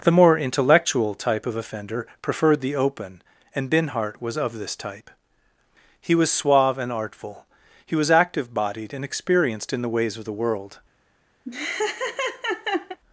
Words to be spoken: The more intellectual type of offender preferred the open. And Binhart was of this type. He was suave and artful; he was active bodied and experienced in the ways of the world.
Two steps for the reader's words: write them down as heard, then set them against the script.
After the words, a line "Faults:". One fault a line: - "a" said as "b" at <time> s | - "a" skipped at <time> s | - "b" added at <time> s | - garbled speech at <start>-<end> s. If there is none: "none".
The more intellectual type of offender preferred the open. And Binhart was of this type. He was suave and artful; he was active bodied and experienced in the ways of the world.
Faults:
none